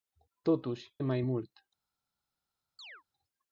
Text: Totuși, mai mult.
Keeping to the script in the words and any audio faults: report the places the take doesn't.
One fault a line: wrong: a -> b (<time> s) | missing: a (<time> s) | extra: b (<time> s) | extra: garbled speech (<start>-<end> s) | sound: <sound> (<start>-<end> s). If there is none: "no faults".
sound: chirp (2.8-3.0 s)